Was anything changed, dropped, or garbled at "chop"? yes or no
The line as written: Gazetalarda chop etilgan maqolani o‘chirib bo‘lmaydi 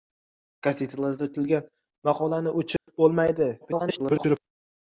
yes